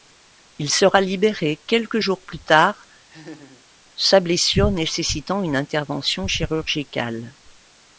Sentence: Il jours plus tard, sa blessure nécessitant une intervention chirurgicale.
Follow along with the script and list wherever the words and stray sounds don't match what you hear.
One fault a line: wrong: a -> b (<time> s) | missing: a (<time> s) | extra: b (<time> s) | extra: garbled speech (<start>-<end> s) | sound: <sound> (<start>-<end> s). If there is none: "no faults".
extra: sera libéré quelques (0.7 s)
sound: laugh (3.1-3.6 s)